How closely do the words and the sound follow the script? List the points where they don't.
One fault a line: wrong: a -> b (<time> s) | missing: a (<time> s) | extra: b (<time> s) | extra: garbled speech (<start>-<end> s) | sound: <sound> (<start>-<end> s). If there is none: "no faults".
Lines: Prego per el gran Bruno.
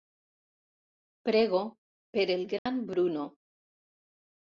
sound: dropout (2.6-2.7 s)